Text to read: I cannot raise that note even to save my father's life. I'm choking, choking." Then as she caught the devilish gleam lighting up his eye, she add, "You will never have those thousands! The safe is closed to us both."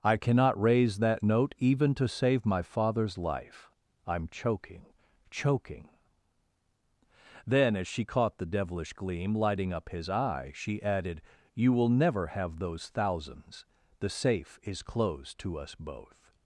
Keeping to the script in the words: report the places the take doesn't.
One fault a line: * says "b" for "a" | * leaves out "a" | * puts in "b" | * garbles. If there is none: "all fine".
* says "added" for "add"